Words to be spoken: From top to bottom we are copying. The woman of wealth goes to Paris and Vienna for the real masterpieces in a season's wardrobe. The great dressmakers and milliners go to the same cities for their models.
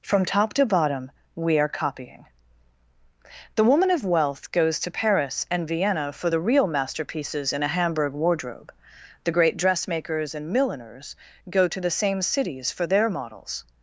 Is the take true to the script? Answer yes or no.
no